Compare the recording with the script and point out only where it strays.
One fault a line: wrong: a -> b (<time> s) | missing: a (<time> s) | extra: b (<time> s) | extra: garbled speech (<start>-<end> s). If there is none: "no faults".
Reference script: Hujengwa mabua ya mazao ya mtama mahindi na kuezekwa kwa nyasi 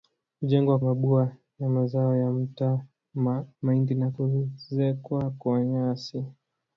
no faults